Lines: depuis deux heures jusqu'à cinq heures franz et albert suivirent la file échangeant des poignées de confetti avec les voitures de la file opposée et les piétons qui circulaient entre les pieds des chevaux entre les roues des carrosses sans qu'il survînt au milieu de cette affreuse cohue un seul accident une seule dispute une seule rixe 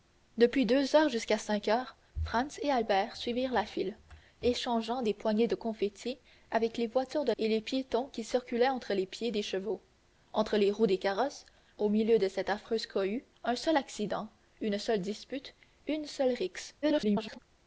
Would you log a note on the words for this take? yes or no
yes